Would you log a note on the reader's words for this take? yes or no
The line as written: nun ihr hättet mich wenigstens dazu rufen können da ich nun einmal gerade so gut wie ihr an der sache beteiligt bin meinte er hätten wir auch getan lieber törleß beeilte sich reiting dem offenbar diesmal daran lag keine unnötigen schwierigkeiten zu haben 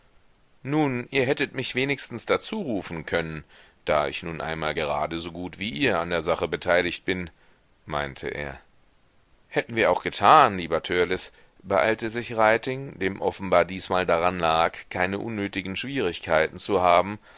no